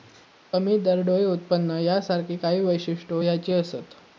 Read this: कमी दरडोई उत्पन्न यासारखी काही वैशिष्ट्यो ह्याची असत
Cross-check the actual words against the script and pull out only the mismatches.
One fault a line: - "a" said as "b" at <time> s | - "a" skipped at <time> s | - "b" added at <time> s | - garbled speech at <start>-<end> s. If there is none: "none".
none